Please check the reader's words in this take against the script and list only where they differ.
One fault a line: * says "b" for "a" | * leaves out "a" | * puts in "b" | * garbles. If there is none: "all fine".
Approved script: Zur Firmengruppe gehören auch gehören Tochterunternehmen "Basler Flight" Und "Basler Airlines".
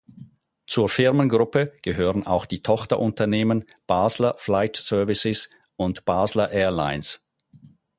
* says "die" for "gehören"
* puts in "Services"